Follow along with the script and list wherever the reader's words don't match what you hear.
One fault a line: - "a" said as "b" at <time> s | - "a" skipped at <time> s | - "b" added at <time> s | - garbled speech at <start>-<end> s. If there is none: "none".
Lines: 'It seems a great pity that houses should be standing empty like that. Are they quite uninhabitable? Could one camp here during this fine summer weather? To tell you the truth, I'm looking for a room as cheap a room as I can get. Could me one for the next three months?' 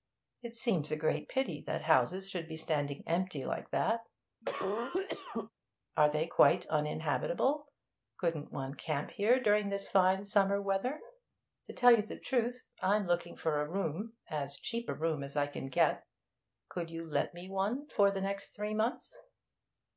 - "Could" said as "Couldn't" at 8.2 s
- "you let" added at 16.9 s